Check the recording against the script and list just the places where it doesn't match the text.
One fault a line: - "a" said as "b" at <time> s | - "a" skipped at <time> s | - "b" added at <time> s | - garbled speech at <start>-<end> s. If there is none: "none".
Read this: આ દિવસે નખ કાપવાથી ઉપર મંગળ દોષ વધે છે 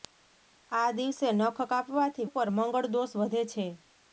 none